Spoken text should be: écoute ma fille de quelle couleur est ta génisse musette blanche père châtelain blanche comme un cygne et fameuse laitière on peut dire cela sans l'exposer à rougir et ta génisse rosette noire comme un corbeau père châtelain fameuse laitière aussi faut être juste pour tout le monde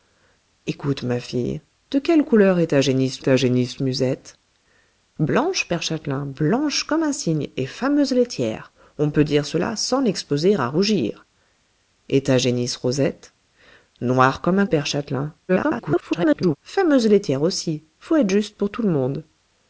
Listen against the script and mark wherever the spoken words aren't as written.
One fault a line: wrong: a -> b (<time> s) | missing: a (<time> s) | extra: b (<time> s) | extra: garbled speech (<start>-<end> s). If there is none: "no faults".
extra: ta génisse (3.2 s)
missing: corbeau (14.7 s)
extra: garbled speech (15.5-16.6 s)